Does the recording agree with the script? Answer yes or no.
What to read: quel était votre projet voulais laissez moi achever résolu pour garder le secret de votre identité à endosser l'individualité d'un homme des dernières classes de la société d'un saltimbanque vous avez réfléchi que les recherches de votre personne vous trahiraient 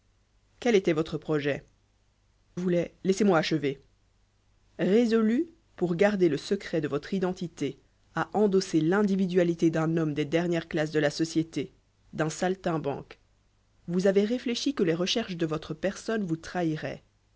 yes